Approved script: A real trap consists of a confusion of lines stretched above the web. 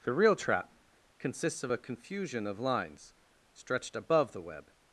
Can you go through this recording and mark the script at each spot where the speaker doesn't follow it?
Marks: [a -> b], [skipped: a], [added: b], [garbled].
[A -> The] real trap consists of a confusion of lines stretched above the web.